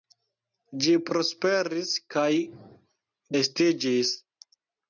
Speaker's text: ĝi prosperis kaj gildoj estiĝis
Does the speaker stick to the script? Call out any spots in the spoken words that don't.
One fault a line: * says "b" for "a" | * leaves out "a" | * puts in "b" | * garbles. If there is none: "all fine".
* leaves out "gildoj"